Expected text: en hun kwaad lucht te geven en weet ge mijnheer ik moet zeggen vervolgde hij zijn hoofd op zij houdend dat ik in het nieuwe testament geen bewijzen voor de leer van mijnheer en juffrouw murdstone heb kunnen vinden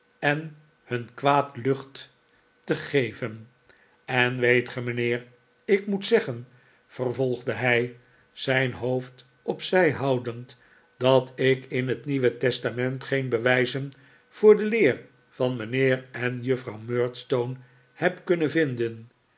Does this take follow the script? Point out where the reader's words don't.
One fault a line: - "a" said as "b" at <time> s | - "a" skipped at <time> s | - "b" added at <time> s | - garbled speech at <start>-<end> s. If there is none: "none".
none